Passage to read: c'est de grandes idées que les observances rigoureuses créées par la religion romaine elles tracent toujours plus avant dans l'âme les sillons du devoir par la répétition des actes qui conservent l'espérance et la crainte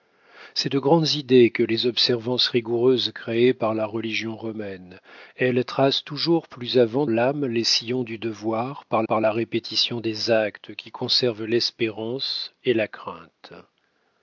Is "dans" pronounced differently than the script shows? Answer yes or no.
yes